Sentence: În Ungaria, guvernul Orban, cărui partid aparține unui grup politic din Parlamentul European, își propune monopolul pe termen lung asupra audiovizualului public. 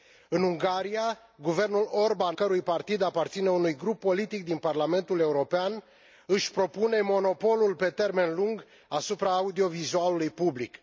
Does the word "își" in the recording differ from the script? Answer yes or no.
no